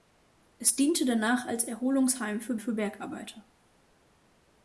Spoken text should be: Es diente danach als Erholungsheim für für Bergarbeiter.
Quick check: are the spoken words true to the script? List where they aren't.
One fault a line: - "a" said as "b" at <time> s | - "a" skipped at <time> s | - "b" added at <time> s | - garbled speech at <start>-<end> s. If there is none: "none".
none